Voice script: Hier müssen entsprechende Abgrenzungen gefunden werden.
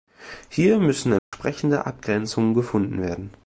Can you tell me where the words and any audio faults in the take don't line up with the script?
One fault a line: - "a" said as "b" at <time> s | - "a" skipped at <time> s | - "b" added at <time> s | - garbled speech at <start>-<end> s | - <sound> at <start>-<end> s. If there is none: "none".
- dropout at 1.2-1.3 s